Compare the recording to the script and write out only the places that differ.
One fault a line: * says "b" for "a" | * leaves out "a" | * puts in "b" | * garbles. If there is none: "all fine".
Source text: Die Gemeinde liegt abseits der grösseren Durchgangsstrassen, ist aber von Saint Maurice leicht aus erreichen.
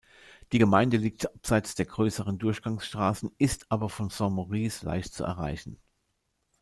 * says "zu" for "aus"